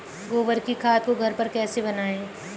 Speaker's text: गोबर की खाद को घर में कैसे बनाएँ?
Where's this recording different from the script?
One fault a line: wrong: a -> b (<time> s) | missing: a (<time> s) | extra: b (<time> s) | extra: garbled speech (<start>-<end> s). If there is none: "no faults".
wrong: में -> पर (1.3 s)